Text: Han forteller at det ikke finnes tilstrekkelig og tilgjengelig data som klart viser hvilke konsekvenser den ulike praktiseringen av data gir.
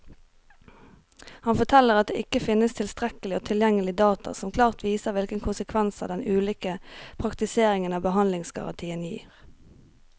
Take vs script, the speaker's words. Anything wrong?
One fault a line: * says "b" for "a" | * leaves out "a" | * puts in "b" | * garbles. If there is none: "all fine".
* says "behandlingsgarantien" for "data"